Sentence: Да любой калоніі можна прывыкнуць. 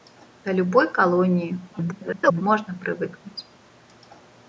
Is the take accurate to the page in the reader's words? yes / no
no